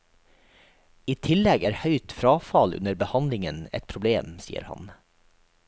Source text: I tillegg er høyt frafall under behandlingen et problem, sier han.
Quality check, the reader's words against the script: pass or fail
pass